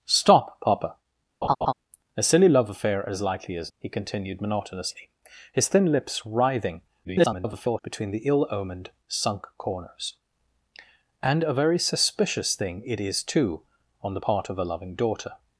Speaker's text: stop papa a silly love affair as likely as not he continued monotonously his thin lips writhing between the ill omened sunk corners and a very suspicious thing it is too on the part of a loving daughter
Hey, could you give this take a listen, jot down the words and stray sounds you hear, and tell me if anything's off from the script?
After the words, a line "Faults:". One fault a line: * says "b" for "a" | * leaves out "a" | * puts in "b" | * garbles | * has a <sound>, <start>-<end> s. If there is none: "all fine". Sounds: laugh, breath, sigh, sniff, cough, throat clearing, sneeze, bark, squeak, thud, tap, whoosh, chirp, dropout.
stop papa a silly love affair as likely as he continued monotonously his thin lips writhing [garbled] between the ill omened sunk corners and a very suspicious thing it is too on the part of a loving daughter
Faults:
* has a laugh, 1.4-1.7 s
* leaves out "not"
* garbles